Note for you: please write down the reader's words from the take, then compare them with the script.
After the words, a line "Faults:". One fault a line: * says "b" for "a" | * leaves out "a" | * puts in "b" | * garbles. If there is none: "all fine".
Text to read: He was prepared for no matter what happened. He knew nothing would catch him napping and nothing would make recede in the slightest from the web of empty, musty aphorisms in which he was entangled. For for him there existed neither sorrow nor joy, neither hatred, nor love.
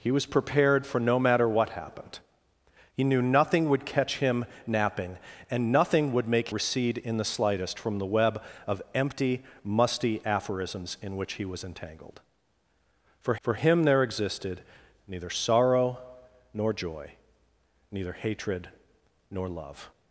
He was prepared for no matter what happened. He knew nothing would catch him napping and nothing would make recede in the slightest from the web of empty, musty aphorisms in which he was entangled. For for him there existed neither sorrow nor joy, neither hatred, nor love.
Faults:
all fine